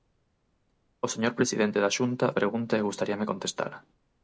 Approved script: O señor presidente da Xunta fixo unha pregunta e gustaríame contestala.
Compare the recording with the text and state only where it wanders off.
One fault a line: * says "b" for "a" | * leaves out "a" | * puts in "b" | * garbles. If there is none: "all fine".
* leaves out "fixo unha"